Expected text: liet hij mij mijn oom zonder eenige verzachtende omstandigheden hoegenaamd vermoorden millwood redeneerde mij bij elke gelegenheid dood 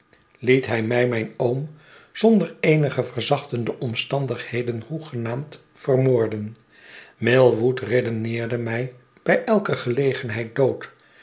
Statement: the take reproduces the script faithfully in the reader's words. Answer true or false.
true